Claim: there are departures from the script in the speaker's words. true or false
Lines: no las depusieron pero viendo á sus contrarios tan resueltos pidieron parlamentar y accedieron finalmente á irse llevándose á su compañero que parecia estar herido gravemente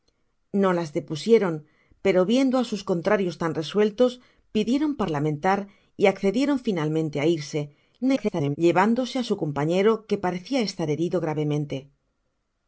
true